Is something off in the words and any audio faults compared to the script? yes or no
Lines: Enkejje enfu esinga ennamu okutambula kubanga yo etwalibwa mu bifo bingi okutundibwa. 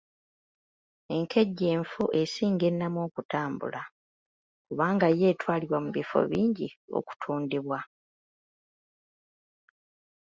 no